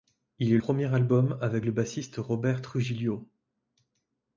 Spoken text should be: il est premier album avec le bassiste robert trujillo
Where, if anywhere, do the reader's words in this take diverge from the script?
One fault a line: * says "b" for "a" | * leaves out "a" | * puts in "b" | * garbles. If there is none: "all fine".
all fine